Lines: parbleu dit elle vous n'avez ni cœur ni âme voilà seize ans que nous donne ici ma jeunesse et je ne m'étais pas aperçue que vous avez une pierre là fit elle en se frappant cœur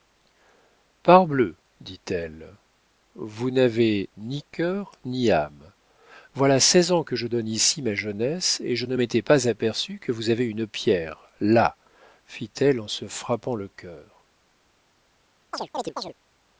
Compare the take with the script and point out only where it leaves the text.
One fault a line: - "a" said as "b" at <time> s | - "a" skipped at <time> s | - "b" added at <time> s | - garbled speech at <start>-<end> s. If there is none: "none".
- "nous" said as "je" at 7.2 s
- "le" added at 13.6 s